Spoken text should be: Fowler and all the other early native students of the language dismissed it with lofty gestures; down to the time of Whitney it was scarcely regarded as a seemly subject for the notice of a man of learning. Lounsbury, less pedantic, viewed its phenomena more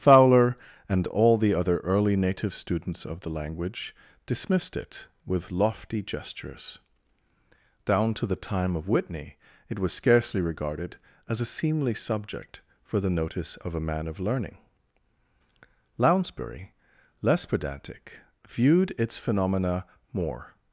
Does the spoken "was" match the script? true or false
true